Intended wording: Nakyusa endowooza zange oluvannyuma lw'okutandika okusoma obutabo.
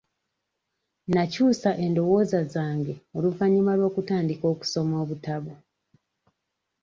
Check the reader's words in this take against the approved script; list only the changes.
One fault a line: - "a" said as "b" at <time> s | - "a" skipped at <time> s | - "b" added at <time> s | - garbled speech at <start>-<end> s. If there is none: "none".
none